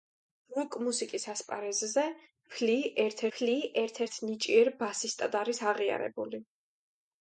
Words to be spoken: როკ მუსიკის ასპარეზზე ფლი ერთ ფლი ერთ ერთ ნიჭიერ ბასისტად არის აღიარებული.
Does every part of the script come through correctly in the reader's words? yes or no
yes